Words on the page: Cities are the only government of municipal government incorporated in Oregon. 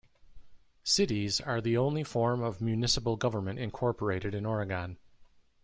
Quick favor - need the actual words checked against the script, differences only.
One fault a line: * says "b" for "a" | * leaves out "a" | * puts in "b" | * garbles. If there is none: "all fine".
* says "form" for "government"